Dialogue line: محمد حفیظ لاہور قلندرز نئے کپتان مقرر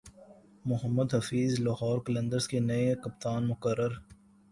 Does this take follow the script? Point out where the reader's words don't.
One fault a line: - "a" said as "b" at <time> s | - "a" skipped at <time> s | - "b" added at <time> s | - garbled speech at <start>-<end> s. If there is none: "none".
- "کے" added at 2.5 s